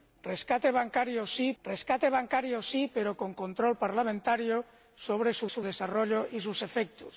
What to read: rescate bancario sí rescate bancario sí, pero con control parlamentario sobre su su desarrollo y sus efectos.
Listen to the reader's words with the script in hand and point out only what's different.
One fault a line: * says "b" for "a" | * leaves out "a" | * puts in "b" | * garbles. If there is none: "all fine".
all fine